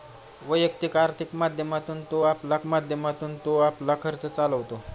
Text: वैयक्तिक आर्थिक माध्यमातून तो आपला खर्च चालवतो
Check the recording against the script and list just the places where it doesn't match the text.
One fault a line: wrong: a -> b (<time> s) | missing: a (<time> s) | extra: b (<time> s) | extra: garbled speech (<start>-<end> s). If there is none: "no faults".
extra: माध्यमातून तो आपला (2.7 s)